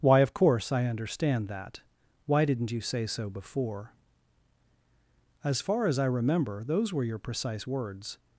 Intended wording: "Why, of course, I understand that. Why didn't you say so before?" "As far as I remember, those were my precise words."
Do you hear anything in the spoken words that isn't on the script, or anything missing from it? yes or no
yes